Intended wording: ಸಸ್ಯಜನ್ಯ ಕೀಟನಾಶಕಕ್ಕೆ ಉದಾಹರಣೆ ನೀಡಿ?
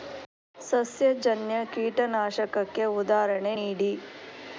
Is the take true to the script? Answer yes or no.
yes